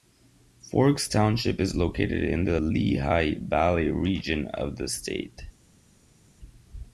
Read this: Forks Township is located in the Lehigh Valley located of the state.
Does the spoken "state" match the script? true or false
true